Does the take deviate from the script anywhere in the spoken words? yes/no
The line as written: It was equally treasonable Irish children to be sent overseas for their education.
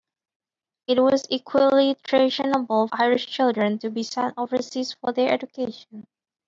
no